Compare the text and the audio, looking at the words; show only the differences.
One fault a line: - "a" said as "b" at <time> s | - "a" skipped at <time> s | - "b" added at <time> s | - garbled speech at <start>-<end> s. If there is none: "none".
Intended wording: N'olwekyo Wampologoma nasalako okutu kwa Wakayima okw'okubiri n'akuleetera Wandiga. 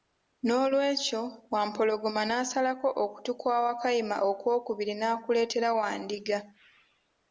none